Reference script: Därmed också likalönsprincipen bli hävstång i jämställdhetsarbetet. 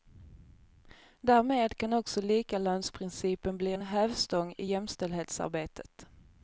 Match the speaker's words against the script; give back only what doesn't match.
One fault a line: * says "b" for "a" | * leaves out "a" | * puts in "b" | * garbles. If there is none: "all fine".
* puts in "kan"
* puts in "en"